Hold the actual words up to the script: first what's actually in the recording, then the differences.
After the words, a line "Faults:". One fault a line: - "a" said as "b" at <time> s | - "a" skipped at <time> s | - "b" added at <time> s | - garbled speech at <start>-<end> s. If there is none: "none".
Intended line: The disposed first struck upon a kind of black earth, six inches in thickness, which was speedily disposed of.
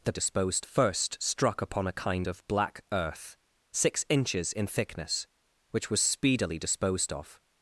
The disposed first struck upon a kind of black earth, six inches in thickness, which was speedily disposed of.
Faults:
none